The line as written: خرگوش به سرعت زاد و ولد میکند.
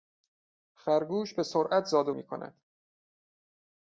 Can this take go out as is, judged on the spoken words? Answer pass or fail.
fail